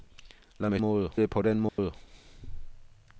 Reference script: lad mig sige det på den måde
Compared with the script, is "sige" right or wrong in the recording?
wrong